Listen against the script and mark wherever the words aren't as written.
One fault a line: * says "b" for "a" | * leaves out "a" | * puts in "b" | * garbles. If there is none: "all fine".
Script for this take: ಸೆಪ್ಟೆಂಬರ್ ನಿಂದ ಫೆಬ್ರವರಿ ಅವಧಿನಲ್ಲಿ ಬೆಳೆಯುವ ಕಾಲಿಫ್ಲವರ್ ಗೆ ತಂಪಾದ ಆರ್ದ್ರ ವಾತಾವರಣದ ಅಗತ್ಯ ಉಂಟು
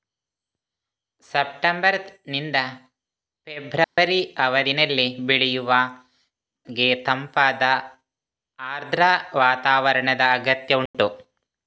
* leaves out "ಕಾಲಿಫ್ಲವರ್"